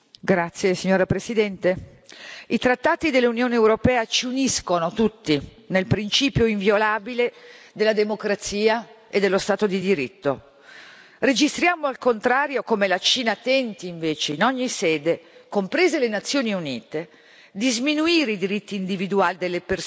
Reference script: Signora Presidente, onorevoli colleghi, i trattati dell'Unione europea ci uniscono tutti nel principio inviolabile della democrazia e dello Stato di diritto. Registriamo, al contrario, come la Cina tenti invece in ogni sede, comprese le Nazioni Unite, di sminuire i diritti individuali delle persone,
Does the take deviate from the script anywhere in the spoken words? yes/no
no